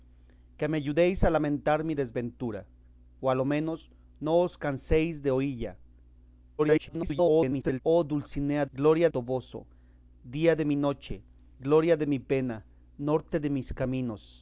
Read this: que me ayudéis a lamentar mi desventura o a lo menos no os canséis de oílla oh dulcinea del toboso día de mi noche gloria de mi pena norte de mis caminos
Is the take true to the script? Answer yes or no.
no